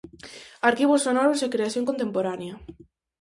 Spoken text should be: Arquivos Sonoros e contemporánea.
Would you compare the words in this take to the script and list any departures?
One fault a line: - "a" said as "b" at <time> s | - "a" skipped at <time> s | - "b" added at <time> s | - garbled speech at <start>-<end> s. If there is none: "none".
- "creación" added at 1.5 s